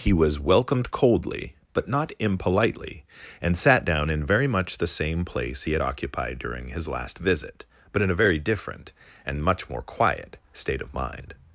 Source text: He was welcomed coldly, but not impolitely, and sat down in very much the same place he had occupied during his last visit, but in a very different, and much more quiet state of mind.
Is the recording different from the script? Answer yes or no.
no